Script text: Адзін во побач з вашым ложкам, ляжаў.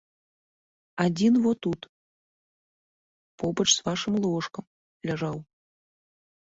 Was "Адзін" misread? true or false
false